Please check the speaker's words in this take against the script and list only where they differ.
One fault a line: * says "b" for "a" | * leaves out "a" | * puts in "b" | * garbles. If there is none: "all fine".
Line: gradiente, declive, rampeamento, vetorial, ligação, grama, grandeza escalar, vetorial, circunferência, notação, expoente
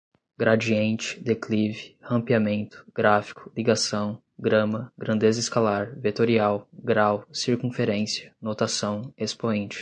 * says "gráfico" for "vetorial"
* puts in "grau"